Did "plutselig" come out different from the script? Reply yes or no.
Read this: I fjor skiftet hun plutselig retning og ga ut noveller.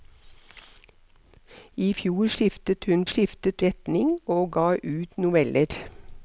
yes